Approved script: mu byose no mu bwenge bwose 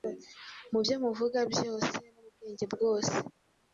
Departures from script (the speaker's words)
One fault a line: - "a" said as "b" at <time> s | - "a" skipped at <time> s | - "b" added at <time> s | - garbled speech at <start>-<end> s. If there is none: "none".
- "byo muvuga" added at 0.8 s